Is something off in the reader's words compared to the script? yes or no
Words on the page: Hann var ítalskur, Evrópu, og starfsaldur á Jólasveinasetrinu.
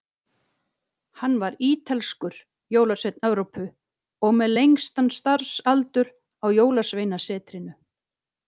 yes